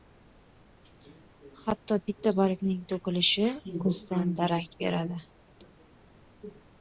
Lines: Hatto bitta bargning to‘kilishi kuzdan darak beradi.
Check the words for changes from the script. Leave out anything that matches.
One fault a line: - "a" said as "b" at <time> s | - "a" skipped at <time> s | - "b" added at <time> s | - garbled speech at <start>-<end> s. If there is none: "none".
none